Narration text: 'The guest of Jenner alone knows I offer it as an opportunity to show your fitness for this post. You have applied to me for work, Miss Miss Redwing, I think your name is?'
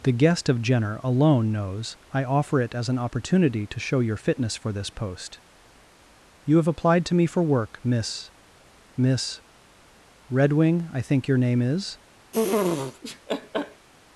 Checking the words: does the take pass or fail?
pass